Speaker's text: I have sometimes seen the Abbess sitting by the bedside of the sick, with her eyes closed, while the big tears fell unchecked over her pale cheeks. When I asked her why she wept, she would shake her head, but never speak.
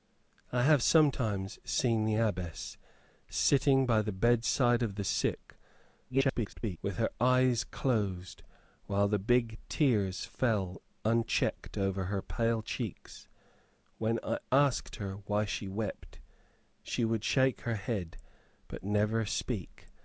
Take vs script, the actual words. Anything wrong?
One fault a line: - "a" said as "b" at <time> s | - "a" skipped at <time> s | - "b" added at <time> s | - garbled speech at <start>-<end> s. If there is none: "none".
- garbled speech at 6.1-6.8 s